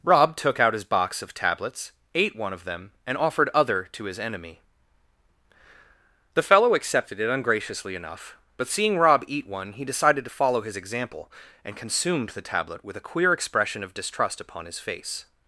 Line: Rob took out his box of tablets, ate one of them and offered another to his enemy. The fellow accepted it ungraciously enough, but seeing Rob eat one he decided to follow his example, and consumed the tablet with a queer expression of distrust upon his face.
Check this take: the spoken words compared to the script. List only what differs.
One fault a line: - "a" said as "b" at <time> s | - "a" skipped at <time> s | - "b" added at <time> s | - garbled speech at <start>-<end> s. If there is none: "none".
- "another" said as "other" at 3.5 s